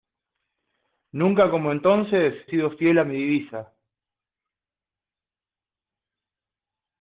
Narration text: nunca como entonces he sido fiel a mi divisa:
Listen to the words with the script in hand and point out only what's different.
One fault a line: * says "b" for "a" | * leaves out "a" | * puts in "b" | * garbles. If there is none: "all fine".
* leaves out "he"